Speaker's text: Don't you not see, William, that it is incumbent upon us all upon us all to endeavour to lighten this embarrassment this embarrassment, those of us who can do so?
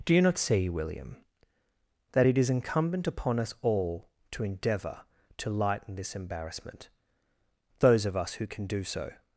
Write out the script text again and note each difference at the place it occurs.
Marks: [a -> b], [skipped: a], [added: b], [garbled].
[Don't -> Do] you not see, William, that it is incumbent upon us all [skipped: upon us all] to endeavour to lighten this embarrassment [skipped: this embarrassment,] those of us who can do so?